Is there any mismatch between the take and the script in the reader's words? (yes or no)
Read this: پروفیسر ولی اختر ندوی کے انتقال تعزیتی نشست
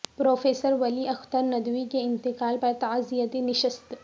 yes